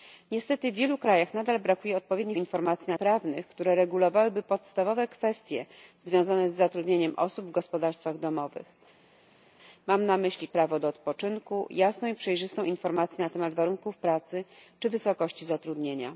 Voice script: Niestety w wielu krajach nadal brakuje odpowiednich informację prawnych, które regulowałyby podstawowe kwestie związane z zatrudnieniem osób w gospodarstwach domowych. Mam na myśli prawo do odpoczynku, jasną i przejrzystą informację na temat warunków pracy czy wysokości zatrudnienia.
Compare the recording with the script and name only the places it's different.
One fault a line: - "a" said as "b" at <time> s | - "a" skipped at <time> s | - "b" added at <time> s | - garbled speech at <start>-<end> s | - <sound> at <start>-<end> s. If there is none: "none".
none